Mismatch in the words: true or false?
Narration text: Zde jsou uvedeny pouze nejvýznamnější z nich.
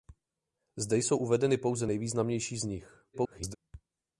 true